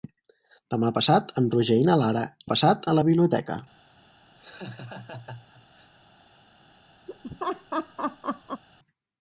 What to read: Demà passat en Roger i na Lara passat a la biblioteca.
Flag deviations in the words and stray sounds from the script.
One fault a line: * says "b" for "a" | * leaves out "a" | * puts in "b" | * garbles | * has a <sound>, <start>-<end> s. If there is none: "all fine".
* has a laugh, 4.4-5.9 s
* has a laugh, 7.1-8.6 s